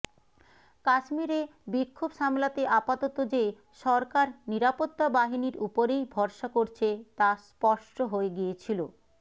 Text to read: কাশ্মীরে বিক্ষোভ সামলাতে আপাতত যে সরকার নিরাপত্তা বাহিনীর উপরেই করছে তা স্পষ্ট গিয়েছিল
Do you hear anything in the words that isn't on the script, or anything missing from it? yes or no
yes